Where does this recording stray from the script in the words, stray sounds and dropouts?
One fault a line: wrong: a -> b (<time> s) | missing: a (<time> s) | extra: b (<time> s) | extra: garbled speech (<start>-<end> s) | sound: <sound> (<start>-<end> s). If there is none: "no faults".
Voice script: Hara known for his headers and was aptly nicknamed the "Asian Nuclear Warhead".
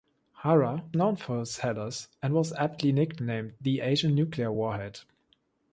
no faults